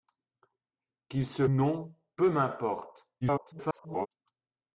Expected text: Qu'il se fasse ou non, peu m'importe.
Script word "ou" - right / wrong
wrong